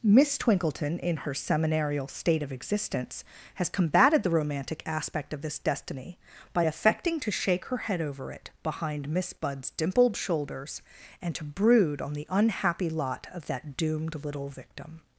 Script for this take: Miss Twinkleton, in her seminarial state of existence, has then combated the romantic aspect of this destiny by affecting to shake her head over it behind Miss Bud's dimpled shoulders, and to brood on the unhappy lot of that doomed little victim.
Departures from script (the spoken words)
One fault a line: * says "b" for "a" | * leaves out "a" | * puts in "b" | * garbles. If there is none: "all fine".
* leaves out "then"